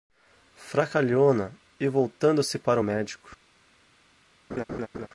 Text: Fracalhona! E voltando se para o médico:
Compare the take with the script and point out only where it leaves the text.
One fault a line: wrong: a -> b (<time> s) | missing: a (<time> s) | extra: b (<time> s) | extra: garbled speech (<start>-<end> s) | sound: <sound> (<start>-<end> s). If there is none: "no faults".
sound: laugh (4.5-5.1 s)